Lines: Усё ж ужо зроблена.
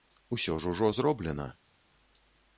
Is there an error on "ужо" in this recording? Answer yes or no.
no